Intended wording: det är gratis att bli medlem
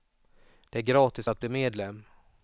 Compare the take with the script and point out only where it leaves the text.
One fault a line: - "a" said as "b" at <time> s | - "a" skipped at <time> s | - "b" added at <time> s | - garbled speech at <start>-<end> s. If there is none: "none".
none